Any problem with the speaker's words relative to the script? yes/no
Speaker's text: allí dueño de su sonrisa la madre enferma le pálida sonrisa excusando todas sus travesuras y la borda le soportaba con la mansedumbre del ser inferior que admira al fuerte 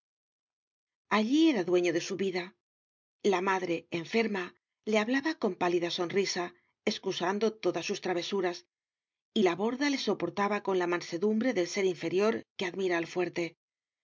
yes